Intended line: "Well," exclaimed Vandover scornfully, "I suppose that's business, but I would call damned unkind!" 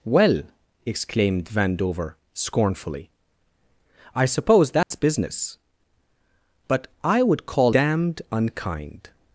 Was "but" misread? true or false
false